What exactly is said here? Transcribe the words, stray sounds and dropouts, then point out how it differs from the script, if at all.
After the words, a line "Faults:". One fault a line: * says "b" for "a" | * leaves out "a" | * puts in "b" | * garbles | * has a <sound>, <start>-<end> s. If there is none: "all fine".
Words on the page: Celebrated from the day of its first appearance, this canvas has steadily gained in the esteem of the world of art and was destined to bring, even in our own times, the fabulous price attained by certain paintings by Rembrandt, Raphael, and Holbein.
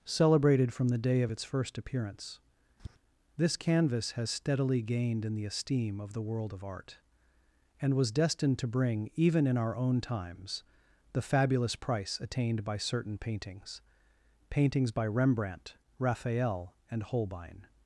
Celebrated from the day of its first appearance, this canvas has steadily gained in the esteem of the world of art and was destined to bring, even in our own times, the fabulous price attained by certain paintings paintings by Rembrandt, Raphael, and Holbein.
Faults:
* has a tap, 2.8-3.0 s
* puts in "paintings"